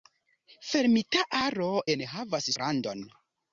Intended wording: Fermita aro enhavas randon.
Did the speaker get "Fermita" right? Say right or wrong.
right